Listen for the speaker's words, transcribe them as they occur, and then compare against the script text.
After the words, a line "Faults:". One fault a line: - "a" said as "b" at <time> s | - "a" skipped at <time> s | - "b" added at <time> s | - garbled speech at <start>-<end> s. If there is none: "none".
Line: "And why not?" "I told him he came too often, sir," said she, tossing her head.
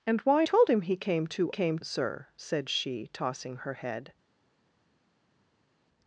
"And why told him he came too came, sir," said she, tossing her head.
Faults:
- "not I" skipped at 0.5 s
- "often" said as "came" at 1.5 s